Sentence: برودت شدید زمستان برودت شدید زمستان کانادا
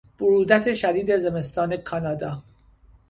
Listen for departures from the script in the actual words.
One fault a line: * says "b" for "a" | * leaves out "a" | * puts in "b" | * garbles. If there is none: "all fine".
* leaves out "برودت شدید زمستان"